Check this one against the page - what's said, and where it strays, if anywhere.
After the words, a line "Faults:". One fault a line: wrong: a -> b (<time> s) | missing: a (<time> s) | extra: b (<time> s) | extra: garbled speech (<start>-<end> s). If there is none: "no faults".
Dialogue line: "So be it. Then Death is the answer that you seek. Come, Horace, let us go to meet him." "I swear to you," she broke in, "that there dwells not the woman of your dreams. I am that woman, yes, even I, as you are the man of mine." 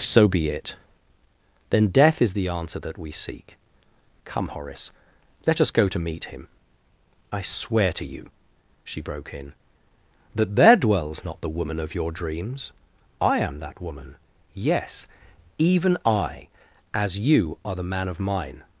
"So be it. Then Death is the answer that we seek. Come, Horace, let us go to meet him." "I swear to you," she broke in, "that there dwells not the woman of your dreams. I am that woman, yes, even I, as you are the man of mine."
Faults:
wrong: you -> we (3.0 s)